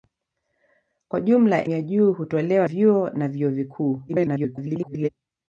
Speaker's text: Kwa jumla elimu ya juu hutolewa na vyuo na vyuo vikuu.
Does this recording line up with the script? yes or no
no